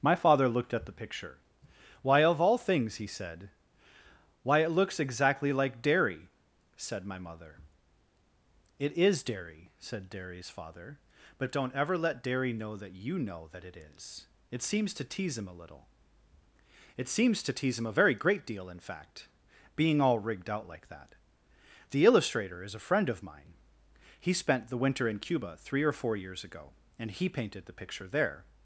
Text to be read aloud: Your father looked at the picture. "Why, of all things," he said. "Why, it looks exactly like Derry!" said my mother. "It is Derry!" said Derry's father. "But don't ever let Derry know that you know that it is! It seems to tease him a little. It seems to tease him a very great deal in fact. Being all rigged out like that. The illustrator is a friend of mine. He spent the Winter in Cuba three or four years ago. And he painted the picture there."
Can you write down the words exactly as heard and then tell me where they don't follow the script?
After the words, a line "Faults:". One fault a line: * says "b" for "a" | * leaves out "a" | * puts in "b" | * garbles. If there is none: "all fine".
My father looked at the picture. "Why, of all things," he said. "Why, it looks exactly like Derry!" said my mother. "It is Derry!" said Derry's father. "But don't ever let Derry know that you know that it is! It seems to tease him a little. It seems to tease him a very great deal in fact. Being all rigged out like that. The illustrator is a friend of mine. He spent the Winter in Cuba three or four years ago. And he painted the picture there."
Faults:
* says "My" for "Your"